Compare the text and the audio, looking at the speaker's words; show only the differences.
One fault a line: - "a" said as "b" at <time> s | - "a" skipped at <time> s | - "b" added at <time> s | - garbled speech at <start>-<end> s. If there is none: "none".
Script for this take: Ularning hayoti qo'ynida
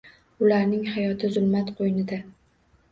- "zulmat" added at 1.3 s